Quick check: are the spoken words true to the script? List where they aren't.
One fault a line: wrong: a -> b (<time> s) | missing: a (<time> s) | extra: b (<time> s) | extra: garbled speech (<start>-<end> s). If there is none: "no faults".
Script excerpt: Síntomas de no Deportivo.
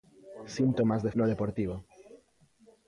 no faults